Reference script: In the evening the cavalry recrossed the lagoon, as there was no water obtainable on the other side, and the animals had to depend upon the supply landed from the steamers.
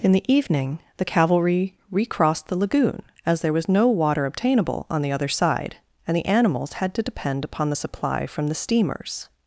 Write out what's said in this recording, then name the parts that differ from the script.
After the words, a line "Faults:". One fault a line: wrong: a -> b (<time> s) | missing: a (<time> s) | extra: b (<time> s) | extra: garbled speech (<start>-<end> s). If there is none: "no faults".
In the evening the cavalry recrossed the lagoon, as there was no water obtainable on the other side, and the animals had to depend upon the supply from the steamers.
Faults:
missing: landed (8.3 s)